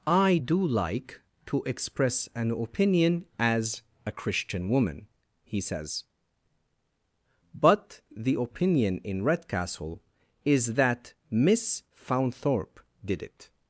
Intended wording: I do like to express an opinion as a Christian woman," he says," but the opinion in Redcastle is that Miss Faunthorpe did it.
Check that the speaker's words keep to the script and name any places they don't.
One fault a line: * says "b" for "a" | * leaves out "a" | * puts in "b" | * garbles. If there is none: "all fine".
all fine